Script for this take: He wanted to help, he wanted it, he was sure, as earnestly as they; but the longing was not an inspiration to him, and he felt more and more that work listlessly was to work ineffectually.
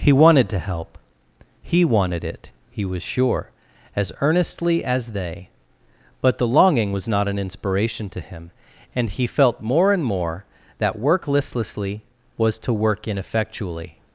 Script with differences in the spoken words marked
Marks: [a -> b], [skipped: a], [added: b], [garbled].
He wanted to help, he wanted it, he was sure, as earnestly as they; but the longing was not an inspiration to him, and he felt more and more that work listlessly was to work ineffectually.